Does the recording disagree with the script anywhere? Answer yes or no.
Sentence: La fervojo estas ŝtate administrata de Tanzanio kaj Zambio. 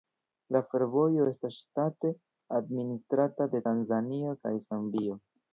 no